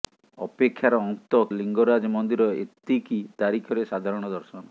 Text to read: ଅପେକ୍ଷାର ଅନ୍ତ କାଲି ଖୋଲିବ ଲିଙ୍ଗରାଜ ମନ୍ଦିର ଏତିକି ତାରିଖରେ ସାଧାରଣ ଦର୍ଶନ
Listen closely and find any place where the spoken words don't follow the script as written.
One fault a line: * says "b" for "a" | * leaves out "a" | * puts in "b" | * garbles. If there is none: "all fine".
* leaves out "କାଲି ଖୋଲିବ"